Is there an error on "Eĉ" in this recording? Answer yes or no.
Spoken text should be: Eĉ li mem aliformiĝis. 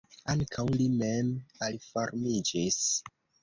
yes